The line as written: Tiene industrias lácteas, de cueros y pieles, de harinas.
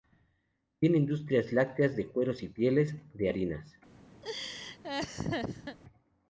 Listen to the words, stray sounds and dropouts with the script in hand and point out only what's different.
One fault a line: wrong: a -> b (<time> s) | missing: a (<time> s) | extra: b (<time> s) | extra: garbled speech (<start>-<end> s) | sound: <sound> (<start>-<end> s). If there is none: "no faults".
sound: laugh (4.2-5.8 s)